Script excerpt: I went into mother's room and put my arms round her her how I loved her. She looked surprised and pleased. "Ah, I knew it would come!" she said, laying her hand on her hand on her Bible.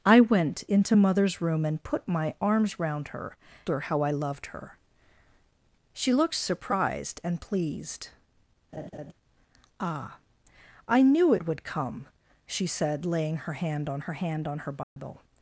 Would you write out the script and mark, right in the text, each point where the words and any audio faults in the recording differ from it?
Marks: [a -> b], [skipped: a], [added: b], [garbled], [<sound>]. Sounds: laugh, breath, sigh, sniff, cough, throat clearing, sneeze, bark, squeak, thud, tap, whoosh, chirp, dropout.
I went into mother's room and put my arms round her her how I loved her. She looked surprised and pleased. [laugh] "Ah, I knew it would come!" she said, laying her hand on her hand on her Bible. [dropout]